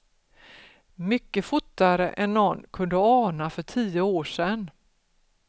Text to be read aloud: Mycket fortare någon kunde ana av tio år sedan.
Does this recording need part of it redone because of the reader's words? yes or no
yes